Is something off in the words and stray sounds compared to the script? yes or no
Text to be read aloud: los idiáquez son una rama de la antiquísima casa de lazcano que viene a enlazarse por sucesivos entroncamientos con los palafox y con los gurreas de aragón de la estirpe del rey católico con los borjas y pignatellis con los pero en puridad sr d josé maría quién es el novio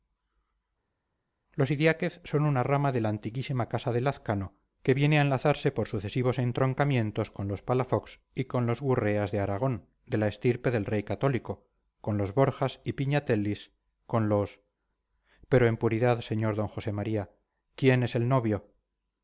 no